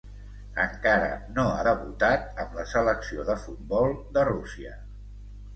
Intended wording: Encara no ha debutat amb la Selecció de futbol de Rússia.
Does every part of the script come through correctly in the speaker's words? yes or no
yes